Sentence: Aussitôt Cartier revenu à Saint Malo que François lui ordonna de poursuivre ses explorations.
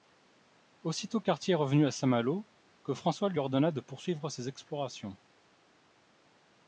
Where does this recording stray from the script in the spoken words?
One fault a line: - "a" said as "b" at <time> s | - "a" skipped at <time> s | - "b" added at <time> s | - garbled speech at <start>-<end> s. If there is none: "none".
none